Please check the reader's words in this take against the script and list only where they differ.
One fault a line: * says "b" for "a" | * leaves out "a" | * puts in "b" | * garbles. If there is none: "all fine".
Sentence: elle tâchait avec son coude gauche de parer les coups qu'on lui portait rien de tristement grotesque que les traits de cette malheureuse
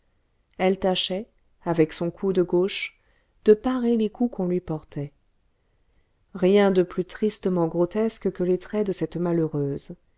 * puts in "plus"